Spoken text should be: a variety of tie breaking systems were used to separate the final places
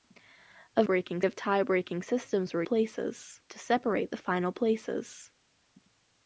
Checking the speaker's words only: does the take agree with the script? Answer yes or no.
no